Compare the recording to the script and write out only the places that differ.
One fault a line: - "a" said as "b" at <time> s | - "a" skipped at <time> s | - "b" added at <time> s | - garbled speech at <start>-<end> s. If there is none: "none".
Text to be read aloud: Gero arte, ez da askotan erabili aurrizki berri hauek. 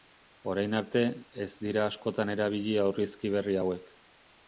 - "Gero" said as "Orain" at 0.5 s
- "da" said as "dira" at 1.6 s